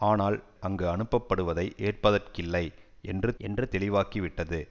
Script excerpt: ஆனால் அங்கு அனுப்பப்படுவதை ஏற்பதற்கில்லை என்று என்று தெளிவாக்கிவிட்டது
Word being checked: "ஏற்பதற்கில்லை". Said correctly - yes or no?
yes